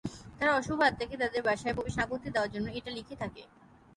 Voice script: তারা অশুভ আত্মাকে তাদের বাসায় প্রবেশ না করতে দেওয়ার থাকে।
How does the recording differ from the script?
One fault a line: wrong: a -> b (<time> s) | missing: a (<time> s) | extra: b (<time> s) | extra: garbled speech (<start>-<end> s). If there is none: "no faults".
extra: জন্য এটা লিখে (2.5 s)